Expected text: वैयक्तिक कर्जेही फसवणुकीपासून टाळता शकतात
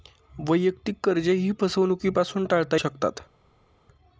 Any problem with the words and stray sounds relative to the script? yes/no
no